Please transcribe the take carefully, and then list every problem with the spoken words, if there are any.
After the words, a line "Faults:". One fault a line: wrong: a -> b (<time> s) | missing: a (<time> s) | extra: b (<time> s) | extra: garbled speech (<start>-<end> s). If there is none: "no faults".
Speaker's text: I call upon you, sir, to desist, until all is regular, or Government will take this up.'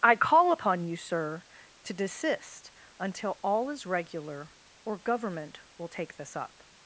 I call upon you, sir, to desist, until all is regular, or Government will take this up.'
Faults:
no faults